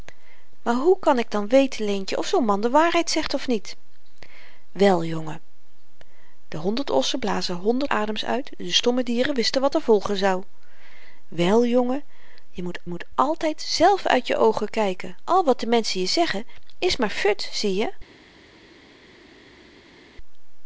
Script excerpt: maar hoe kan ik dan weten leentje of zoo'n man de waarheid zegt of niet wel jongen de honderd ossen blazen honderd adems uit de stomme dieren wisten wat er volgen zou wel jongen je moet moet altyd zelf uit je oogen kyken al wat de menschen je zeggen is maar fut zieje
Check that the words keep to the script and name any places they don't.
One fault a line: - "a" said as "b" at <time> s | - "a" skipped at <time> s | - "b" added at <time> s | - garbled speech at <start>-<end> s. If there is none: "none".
none